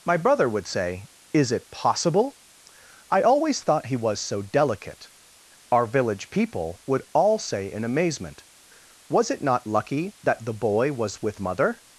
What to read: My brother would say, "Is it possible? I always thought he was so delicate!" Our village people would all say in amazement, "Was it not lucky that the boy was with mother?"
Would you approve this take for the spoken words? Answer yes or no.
yes